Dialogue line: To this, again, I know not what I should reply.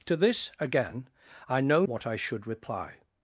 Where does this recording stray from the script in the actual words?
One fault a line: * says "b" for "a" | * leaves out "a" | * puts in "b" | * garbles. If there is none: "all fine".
* leaves out "not"